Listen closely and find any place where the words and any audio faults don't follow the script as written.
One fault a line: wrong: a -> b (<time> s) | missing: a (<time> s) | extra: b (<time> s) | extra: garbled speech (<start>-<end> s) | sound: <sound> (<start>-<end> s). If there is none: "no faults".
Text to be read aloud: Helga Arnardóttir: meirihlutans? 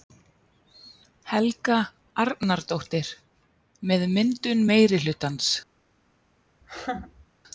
extra: með myndun (3.9 s)
sound: laugh (6.6-7.3 s)